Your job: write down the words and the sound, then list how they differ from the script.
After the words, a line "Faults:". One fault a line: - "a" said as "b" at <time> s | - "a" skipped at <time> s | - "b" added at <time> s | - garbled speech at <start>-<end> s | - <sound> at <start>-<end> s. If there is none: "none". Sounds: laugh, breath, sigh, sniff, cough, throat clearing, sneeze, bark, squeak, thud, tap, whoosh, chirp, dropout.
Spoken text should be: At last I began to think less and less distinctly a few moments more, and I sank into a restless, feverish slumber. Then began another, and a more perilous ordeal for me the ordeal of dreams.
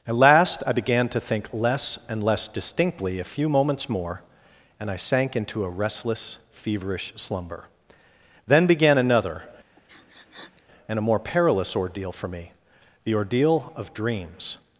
At last I began to think less and less distinctly a few moments more, and I sank into a restless, feverish slumber. Then began another, and a more perilous ordeal for me the ordeal of dreams.
Faults:
- sniff at 9.8-10.6 s